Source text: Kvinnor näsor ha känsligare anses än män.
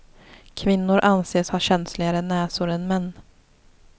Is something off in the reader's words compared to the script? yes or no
yes